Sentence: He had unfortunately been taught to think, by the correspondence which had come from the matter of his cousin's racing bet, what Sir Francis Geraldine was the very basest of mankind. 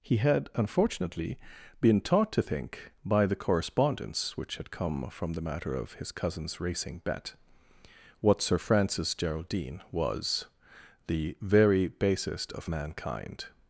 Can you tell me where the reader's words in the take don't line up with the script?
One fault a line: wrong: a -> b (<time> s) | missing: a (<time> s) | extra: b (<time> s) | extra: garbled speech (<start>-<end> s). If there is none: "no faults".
no faults